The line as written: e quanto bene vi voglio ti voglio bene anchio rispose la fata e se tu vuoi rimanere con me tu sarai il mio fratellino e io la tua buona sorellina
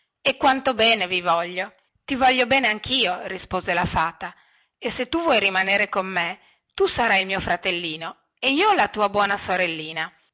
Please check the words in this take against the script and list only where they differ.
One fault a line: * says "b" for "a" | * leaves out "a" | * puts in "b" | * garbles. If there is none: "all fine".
all fine